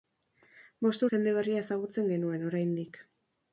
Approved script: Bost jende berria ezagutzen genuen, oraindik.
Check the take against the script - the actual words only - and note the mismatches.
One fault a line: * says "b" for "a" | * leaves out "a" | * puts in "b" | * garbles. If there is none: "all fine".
all fine